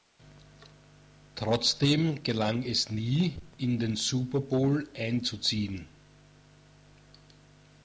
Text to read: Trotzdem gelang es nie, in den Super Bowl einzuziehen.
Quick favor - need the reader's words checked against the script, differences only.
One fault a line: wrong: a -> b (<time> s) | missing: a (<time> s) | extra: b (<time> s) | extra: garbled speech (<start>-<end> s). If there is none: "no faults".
no faults